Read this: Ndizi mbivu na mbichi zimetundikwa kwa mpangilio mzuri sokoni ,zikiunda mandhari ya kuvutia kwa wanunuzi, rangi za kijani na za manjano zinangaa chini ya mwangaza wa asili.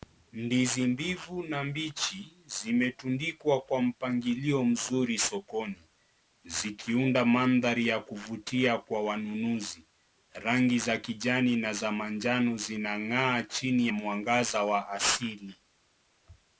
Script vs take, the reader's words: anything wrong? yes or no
yes